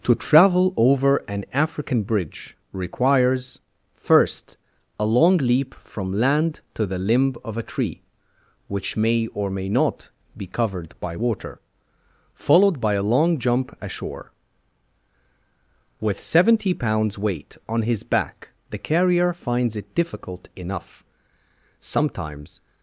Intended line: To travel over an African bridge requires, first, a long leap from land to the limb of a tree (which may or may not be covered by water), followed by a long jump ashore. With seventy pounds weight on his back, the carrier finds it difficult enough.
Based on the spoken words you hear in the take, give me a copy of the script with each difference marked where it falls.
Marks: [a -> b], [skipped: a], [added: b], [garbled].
To travel over an African bridge requires, first, a long leap from land to the limb of a tree (which may or may not be covered by water), followed by a long jump ashore. With seventy pounds weight on his back, the carrier finds it difficult enough. [added: Sometimes]